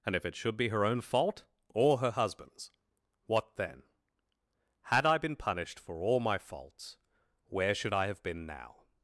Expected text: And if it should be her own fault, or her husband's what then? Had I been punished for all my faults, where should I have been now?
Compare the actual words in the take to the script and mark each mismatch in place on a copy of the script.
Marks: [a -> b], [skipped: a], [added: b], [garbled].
And if it should be her own fault, or her husband's what then? Had I been punished for all my faults, where should I have been now?